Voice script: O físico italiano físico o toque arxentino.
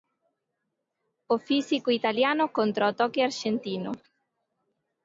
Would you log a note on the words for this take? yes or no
yes